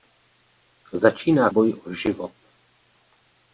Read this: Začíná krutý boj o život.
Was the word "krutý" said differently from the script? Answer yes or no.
yes